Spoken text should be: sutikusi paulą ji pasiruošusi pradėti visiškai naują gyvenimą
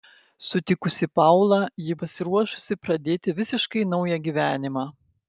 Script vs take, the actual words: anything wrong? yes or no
no